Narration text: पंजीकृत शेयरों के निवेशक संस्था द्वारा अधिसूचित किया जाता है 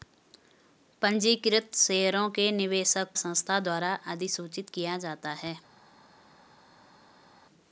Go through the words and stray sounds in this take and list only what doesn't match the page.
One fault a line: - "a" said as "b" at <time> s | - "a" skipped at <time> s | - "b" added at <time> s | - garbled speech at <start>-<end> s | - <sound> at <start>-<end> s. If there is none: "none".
none